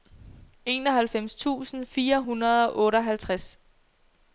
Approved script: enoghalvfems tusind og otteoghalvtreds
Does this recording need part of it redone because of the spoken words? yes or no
yes